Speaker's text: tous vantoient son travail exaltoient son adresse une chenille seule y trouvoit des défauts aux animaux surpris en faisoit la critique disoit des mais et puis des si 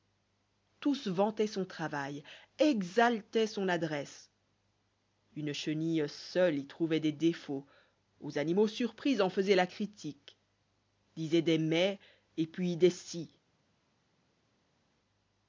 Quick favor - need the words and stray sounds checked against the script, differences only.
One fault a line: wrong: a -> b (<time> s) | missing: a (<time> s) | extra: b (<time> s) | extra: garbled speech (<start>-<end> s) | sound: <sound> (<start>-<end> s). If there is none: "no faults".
no faults